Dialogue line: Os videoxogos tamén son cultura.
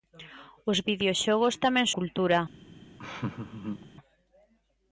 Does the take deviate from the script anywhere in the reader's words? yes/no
yes